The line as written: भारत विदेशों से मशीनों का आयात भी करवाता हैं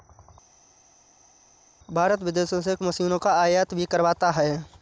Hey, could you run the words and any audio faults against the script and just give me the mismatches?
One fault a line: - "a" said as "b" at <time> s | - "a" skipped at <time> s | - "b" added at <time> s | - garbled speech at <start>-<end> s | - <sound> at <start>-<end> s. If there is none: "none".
none